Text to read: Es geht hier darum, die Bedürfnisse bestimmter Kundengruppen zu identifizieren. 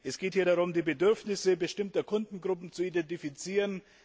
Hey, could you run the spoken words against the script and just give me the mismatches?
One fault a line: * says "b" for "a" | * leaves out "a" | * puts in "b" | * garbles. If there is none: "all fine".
all fine